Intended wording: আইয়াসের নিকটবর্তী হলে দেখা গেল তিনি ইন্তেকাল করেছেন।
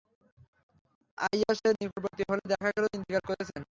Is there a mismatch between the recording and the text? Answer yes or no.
yes